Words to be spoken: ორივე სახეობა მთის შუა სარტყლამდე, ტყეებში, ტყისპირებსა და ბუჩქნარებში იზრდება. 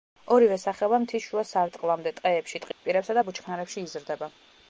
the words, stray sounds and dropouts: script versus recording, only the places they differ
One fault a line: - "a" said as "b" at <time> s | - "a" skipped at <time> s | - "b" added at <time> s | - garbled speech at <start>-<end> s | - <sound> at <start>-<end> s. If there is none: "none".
- dropout at 2.7-2.8 s